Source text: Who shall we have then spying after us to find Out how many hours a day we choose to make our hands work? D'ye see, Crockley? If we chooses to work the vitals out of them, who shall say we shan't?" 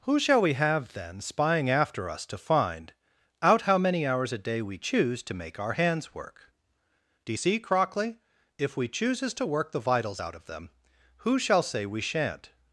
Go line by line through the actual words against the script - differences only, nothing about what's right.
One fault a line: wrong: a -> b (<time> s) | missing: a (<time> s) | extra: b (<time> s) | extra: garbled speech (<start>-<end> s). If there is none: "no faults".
no faults